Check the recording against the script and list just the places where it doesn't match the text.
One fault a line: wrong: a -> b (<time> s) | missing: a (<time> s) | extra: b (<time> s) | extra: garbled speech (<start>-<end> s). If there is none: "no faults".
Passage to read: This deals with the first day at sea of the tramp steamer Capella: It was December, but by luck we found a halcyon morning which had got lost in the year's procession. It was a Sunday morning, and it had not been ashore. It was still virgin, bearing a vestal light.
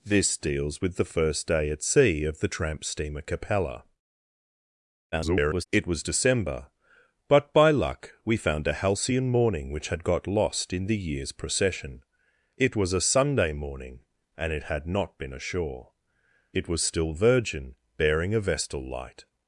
extra: garbled speech (5.1-5.6 s)